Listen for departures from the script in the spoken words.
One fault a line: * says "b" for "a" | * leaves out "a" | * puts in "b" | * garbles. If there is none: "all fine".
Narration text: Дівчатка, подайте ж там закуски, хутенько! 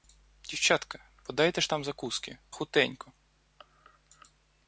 all fine